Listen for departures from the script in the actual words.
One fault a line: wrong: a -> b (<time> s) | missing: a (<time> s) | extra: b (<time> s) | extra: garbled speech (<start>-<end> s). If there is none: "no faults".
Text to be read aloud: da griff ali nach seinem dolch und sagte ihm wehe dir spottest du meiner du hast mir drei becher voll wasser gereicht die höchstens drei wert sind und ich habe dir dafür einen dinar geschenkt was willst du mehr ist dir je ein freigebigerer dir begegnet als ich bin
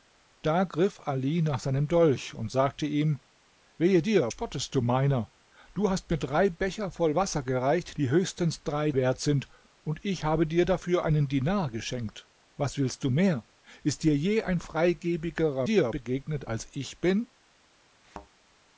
no faults